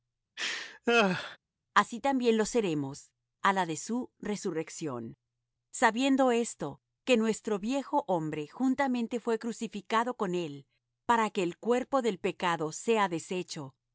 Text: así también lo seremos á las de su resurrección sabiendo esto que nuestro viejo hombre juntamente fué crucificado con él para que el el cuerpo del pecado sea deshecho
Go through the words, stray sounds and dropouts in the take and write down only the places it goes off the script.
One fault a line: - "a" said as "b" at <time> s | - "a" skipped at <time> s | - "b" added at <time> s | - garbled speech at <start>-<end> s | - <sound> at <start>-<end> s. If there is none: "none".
- laugh at 0.4-1.4 s
- "las" said as "la" at 3.5 s
- "el" skipped at 11.6 s